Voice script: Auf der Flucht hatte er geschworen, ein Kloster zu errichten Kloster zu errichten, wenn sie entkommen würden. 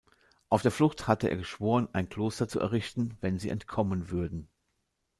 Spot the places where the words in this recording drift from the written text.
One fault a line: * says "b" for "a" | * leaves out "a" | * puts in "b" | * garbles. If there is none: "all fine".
* leaves out "Kloster zu errichten"